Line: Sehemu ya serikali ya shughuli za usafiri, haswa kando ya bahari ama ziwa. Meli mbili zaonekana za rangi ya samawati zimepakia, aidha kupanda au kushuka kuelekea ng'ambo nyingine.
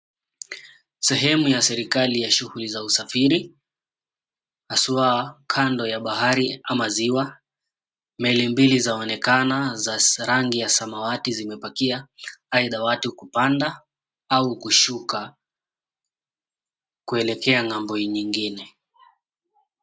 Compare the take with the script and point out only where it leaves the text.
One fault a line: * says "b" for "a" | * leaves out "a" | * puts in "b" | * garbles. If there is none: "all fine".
* puts in "watu"